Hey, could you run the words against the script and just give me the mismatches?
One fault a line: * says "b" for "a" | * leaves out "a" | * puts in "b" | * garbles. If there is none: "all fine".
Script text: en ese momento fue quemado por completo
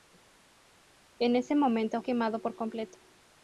* leaves out "fue"